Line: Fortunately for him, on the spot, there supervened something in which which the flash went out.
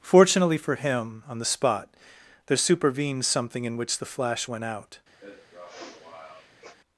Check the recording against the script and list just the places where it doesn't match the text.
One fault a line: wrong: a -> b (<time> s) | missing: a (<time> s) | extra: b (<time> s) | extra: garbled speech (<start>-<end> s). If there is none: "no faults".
missing: which (4.0 s)